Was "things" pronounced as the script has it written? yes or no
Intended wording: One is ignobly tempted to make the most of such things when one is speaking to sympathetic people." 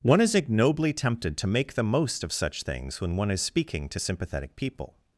yes